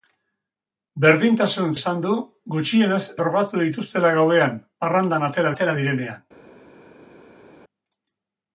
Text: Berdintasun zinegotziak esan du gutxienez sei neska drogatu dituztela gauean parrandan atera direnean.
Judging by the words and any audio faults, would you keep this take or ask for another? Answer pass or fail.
fail